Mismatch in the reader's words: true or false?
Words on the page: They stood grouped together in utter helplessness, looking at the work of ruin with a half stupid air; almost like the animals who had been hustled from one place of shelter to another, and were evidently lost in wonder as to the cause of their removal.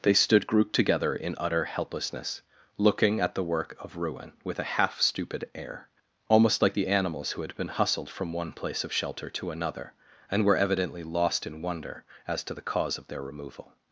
false